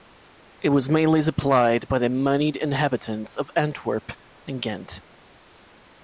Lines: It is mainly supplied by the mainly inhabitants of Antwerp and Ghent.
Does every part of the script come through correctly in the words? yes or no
no